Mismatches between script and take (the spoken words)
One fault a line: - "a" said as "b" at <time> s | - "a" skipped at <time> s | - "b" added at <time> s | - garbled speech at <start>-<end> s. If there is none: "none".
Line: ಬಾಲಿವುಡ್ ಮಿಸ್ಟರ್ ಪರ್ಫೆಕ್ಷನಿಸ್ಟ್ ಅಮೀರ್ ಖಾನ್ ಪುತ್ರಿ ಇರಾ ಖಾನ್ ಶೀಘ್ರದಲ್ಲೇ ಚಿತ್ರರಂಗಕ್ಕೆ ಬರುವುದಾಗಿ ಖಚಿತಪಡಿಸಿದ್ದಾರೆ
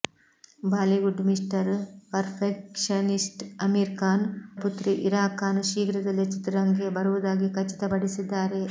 none